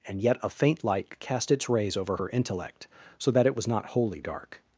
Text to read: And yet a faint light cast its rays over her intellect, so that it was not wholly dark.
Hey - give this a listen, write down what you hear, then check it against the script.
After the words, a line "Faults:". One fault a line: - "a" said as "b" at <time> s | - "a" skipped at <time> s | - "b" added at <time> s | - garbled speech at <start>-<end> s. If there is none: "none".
And yet a faint light cast its rays over her intellect, so that it was not wholly dark.
Faults:
none